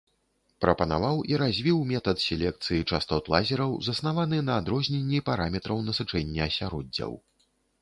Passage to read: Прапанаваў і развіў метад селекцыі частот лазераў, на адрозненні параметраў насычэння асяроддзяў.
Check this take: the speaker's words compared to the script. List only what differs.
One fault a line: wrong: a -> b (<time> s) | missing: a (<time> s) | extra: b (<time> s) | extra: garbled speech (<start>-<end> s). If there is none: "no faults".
extra: заснаваны (3.9 s)